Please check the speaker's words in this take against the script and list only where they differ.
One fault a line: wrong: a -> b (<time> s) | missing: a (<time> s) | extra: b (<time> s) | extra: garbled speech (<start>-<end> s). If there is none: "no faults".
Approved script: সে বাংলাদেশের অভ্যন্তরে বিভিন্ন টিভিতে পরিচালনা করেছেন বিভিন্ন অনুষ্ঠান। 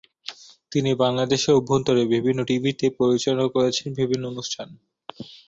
wrong: সে -> তিনি (0.7 s)